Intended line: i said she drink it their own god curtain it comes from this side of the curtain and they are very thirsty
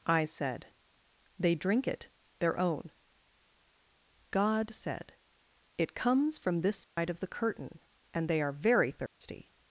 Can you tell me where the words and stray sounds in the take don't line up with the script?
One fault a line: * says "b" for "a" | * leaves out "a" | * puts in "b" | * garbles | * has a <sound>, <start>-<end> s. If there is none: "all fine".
* says "they" for "she"
* says "said" for "curtain"
* has a dropout, 6.8-7.0 s
* has a dropout, 9.1-9.2 s